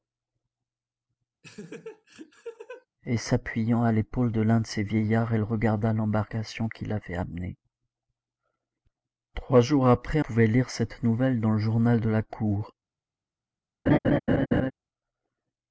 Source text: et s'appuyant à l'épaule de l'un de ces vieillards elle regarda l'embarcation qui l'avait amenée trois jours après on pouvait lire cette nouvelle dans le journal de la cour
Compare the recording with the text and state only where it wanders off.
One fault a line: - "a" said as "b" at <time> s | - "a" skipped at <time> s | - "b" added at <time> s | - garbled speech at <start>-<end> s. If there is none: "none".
- "on" skipped at 10.2 s